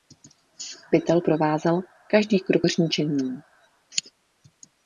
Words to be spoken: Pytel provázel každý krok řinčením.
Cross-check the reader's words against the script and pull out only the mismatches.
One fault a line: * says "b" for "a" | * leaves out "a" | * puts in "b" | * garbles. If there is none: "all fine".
all fine